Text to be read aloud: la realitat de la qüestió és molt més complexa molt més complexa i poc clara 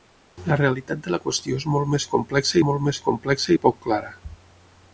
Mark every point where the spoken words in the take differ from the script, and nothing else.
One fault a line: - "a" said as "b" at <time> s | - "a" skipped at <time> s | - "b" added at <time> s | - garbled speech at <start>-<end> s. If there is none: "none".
none